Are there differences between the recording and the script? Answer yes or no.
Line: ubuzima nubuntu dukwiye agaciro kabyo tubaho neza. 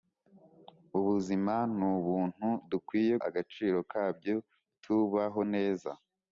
no